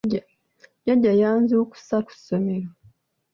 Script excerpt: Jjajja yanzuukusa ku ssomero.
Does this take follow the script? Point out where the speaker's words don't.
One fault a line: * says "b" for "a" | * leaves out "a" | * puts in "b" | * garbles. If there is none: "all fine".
all fine